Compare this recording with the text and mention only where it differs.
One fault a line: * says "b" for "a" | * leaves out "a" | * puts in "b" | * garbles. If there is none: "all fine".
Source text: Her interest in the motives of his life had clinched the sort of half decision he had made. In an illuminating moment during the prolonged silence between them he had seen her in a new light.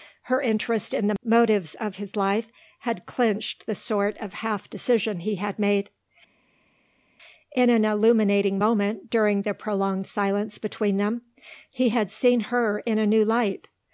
all fine